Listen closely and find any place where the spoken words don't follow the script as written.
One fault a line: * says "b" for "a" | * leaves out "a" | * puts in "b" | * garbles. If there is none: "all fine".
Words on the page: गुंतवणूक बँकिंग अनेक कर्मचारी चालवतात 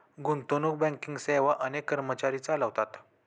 * puts in "सेवा"